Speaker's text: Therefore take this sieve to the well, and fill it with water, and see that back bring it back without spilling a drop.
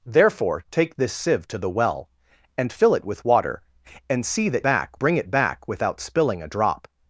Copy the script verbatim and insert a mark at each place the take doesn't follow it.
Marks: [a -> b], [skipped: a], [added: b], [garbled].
Therefore take this sieve to the well, and fill it with water, and see that back bring it back without spilling a drop.